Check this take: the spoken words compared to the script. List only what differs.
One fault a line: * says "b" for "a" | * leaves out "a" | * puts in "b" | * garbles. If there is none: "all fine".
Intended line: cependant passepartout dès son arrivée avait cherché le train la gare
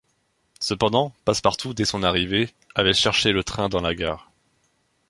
* puts in "dans"